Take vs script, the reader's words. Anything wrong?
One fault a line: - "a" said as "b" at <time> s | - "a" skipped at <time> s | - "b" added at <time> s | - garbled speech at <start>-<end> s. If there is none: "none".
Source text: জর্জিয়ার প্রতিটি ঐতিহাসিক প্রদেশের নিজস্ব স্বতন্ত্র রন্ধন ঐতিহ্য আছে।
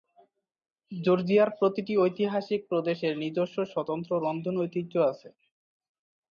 none